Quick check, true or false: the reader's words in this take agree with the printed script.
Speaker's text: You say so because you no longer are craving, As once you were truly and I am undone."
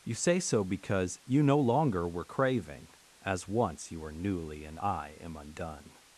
false